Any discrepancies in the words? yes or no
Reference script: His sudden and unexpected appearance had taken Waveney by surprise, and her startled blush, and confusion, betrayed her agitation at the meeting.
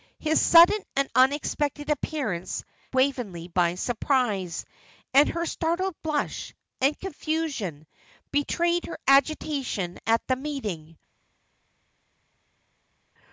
yes